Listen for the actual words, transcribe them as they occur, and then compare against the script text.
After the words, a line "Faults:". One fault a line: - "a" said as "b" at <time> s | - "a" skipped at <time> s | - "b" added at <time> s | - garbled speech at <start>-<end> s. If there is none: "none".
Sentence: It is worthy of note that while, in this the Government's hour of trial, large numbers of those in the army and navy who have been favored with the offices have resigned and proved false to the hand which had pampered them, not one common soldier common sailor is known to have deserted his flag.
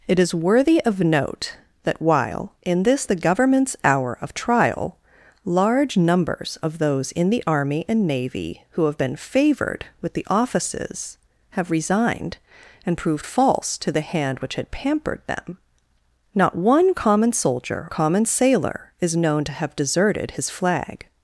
It is worthy of note that while, in this the Government's hour of trial, large numbers of those in the army and navy who have been favored with the offices have resigned and proved false to the hand which had pampered them, not one common soldier common sailor is known to have deserted his flag.
Faults:
none